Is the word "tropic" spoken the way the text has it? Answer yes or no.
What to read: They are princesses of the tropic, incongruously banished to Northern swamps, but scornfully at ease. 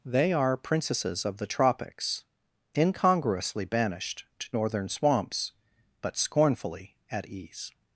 no